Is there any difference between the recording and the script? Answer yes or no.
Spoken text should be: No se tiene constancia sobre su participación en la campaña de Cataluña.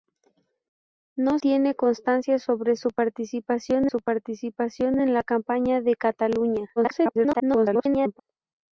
yes